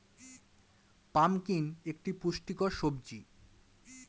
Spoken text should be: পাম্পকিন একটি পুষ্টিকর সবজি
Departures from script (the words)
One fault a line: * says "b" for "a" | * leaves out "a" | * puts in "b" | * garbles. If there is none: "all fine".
all fine